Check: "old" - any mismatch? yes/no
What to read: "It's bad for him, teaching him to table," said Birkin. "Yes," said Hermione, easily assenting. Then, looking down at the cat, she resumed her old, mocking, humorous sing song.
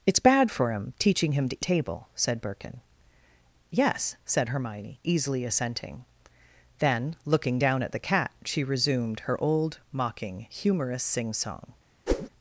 no